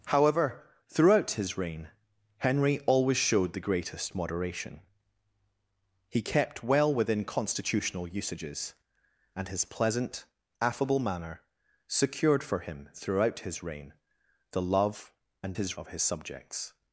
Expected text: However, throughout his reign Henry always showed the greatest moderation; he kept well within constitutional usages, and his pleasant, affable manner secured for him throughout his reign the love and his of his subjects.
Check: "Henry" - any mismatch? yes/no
no